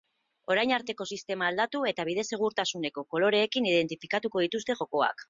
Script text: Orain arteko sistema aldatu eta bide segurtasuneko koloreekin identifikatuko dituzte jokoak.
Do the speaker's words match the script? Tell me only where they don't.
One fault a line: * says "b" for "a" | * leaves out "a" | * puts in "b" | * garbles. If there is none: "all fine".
all fine